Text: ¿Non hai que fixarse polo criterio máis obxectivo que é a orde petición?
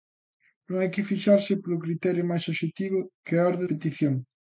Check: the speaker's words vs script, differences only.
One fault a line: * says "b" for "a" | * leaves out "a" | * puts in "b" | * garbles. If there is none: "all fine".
all fine